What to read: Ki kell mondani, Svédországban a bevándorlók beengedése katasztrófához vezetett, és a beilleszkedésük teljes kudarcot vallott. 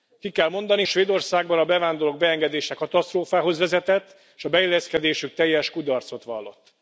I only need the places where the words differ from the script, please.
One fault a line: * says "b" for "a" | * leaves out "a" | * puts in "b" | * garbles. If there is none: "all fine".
all fine